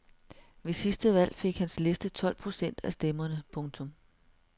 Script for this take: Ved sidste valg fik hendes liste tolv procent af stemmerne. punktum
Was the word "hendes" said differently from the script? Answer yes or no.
yes